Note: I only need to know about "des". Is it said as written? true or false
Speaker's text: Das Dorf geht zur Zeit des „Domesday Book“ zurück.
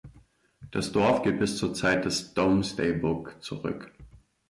true